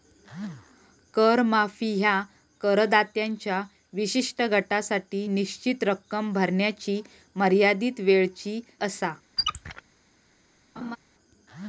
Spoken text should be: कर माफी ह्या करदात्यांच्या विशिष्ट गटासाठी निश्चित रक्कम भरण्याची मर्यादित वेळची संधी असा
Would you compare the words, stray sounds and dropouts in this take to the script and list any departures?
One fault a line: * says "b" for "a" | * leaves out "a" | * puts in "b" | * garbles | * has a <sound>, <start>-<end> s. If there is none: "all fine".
* leaves out "संधी"
* has a squeak, 9.4-9.8 s
* has a laugh, 10.8-11.0 s